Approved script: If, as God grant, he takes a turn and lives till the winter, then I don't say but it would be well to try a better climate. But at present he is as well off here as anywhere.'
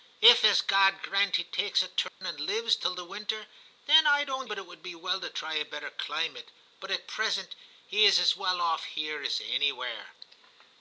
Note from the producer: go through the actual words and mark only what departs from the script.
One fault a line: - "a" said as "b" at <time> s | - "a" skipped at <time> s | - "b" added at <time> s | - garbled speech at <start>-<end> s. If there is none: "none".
- "say" skipped at 4.5 s